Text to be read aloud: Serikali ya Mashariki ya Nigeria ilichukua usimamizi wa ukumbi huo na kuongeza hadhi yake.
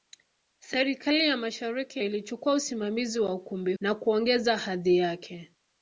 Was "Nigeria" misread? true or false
true